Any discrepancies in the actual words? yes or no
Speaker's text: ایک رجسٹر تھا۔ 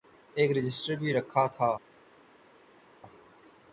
yes